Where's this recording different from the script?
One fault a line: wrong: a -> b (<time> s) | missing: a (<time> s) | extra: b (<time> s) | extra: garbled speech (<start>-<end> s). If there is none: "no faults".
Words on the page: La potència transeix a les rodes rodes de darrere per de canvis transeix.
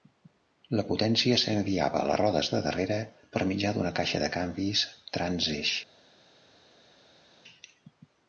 wrong: transeix -> s'enviava (1.4 s)
missing: rodes (2.5 s)
extra: mitjà d'una caixa (3.5 s)